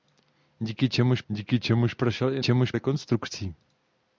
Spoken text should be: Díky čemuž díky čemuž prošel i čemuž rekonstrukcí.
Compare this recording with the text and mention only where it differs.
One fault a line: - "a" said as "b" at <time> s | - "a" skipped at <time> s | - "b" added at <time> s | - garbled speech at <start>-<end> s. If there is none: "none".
none